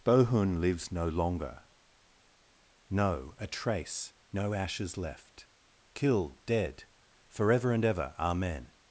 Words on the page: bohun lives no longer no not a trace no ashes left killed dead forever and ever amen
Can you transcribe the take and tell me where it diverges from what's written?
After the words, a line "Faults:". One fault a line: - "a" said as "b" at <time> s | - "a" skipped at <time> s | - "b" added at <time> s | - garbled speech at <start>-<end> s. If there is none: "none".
bohun lives no longer no a trace no ashes left killed dead forever and ever amen
Faults:
- "not" skipped at 3.4 s